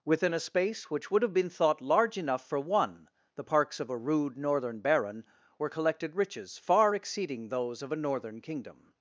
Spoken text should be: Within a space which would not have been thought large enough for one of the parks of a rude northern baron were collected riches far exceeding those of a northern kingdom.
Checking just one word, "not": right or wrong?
wrong